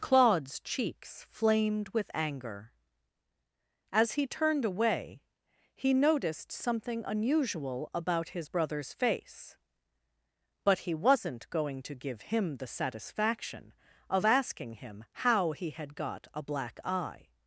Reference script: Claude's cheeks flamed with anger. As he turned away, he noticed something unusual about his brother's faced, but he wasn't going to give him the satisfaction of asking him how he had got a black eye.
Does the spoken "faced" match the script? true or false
false